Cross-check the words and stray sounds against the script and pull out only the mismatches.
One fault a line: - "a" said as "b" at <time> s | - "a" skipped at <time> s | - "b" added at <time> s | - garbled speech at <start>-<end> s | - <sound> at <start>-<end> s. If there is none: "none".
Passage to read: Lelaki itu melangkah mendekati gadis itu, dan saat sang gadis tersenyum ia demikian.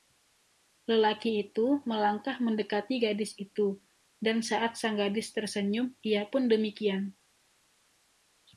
- "pun" added at 6.2 s